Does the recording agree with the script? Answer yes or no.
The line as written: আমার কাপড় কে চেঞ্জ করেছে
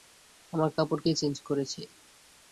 yes